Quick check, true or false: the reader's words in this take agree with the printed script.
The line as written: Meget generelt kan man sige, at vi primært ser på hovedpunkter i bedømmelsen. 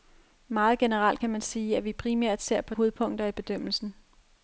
true